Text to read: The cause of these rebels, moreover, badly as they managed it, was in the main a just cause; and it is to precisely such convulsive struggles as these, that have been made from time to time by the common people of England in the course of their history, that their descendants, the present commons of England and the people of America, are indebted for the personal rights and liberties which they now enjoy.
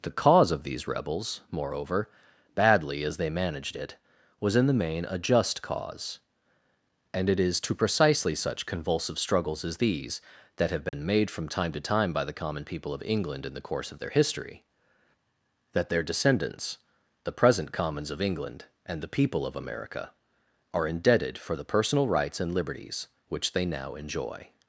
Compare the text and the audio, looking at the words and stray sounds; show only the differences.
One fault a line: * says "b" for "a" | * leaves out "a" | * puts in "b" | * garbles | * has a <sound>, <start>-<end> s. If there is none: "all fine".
* has a dropout, 10.9-10.9 s